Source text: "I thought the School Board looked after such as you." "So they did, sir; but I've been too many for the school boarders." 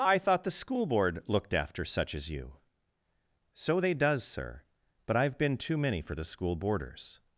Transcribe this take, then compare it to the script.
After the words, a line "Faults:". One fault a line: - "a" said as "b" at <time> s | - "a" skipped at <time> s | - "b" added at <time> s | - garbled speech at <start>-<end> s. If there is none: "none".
"I thought the School Board looked after such as you." "So they does, sir; but I've been too many for the school boarders."
Faults:
- "did" said as "does" at 3.9 s